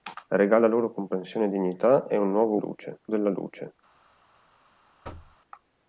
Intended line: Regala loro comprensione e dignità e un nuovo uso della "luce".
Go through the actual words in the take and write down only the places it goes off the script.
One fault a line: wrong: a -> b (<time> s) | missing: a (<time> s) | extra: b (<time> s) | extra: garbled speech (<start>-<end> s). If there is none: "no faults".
wrong: uso -> luce (2.6 s)